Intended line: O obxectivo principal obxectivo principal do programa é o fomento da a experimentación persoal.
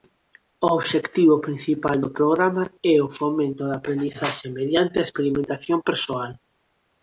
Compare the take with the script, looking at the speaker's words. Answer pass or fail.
fail